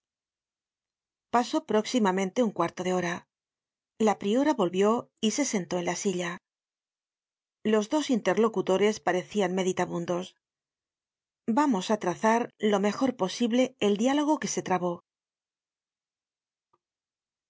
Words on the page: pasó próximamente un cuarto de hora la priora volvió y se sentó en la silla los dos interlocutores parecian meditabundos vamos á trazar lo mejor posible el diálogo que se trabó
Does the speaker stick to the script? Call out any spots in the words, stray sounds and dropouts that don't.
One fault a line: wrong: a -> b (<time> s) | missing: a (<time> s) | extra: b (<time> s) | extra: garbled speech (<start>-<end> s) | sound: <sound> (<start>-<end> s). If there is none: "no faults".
no faults